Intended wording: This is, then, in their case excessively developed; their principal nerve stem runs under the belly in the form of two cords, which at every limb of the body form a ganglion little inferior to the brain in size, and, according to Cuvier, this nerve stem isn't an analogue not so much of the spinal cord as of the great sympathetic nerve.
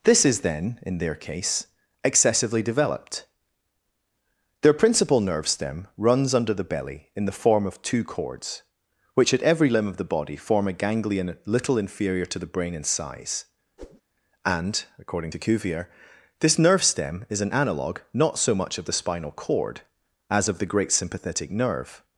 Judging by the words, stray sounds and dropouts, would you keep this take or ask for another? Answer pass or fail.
fail